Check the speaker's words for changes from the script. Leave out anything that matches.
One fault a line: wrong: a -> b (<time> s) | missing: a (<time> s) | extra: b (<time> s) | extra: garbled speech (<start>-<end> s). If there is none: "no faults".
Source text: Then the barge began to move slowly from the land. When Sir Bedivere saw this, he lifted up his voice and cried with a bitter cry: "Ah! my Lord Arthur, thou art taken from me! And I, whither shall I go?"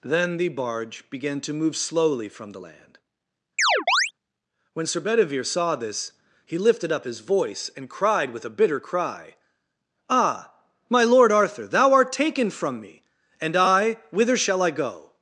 no faults